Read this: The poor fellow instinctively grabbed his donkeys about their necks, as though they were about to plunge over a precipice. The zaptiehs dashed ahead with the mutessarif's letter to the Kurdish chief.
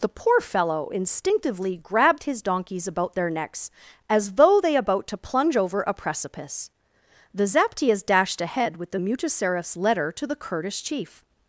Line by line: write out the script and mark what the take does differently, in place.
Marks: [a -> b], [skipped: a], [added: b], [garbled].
The poor fellow instinctively grabbed his donkeys about their necks, as though they [skipped: were] about to plunge over a precipice. The zaptiehs dashed ahead with the mutessarif's letter to the Kurdish chief.